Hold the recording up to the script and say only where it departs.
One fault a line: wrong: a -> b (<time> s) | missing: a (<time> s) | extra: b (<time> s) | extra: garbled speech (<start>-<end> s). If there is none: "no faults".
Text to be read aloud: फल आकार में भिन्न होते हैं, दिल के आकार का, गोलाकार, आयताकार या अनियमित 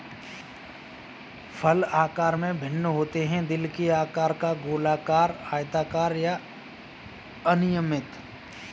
no faults